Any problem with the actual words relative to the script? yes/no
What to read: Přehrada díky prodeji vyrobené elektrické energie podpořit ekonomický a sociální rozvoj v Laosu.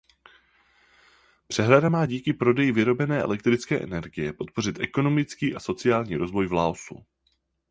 yes